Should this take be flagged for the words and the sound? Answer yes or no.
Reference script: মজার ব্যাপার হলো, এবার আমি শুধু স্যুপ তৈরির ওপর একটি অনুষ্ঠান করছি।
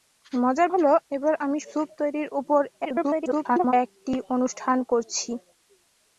yes